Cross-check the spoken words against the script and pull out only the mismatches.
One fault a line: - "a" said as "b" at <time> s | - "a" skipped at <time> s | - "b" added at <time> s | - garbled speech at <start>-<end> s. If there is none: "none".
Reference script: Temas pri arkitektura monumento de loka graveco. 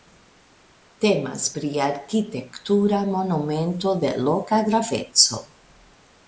none